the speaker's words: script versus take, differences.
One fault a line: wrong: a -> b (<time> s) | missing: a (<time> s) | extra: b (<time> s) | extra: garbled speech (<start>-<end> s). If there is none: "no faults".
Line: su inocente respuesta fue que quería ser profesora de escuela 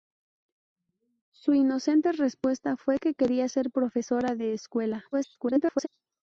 extra: garbled speech (5.1-5.9 s)